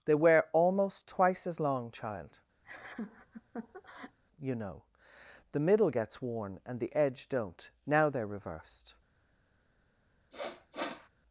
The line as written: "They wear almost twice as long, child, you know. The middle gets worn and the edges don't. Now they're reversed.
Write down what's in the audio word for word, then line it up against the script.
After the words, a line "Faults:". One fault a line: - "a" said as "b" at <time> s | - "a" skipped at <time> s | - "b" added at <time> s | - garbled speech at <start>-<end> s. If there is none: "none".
"They wear almost twice as long, child, you know. The middle gets worn and the edge don't. Now they're reversed.
Faults:
- "edges" said as "edge" at 6.9 s